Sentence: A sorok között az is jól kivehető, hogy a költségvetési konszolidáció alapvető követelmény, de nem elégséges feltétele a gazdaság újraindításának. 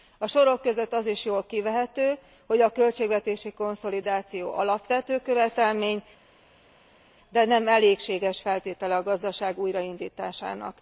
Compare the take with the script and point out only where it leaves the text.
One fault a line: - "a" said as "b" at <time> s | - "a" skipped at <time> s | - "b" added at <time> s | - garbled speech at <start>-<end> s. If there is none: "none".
none